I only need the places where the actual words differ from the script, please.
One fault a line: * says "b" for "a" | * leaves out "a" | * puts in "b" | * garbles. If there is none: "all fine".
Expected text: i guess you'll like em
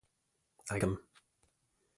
* leaves out "guess you'll like"